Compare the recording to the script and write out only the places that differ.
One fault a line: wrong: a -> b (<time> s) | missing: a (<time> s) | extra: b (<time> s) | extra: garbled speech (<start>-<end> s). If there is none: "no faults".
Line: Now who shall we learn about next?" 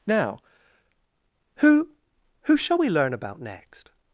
extra: who (2.5 s)